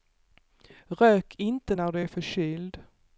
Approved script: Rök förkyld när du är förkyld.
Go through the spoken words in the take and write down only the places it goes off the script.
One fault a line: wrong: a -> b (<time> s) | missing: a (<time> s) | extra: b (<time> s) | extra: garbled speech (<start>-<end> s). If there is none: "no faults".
wrong: förkyld -> inte (1.4 s)